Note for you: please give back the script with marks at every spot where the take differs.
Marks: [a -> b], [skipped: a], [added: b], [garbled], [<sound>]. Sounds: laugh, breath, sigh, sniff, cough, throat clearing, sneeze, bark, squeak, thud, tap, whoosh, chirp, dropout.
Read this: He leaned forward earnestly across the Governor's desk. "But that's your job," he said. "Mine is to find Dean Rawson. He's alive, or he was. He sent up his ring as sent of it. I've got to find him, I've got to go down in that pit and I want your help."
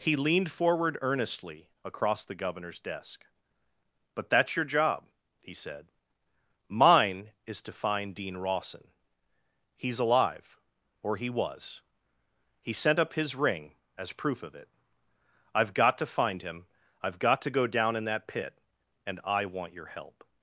He leaned forward earnestly across the Governor's desk. "But that's your job," he said. "Mine is to find Dean Rawson. He's alive, or he was. He sent up his ring as [sent -> proof] of it. I've got to find him, I've got to go down in that pit and I want your help."